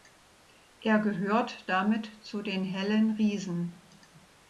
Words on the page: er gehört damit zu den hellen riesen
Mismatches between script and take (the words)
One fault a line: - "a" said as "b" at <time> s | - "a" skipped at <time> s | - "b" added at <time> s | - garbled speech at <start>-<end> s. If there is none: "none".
none